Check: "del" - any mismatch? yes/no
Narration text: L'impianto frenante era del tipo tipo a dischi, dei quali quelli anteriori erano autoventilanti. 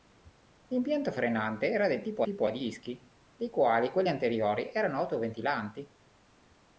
no